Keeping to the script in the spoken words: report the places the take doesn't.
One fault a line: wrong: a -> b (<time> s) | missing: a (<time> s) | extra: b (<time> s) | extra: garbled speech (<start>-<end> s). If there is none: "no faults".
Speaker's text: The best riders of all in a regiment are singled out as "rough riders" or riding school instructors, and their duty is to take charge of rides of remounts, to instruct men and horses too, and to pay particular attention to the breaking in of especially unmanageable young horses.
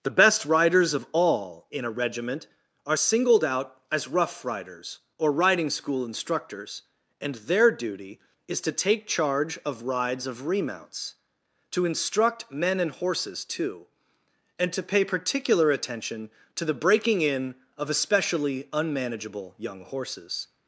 no faults